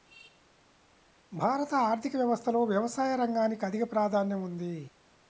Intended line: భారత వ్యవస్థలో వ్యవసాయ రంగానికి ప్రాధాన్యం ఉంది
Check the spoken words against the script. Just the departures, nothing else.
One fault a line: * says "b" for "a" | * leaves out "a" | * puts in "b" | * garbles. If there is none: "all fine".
* puts in "ఆర్థిక"
* puts in "అధిక"